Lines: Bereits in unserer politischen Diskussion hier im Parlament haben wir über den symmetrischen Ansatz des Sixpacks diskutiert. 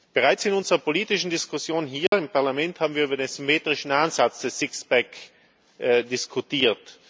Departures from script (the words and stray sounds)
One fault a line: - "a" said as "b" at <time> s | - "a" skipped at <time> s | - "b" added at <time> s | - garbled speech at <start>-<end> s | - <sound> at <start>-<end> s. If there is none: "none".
- dropout at 2.1-2.1 s